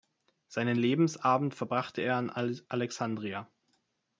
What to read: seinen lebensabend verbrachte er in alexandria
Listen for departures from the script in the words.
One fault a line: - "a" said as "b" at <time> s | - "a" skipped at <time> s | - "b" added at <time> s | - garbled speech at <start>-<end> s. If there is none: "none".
none